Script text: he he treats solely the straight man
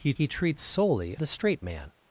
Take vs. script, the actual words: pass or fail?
pass